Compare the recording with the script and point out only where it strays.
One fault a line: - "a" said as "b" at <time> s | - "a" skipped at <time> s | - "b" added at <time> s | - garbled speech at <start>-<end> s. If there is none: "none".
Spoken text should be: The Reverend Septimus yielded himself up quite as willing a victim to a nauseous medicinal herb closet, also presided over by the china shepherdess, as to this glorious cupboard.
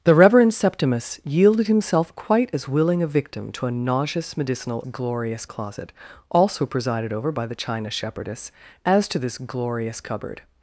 - "up" skipped at 2.1 s
- "herb" said as "glorious" at 4.8 s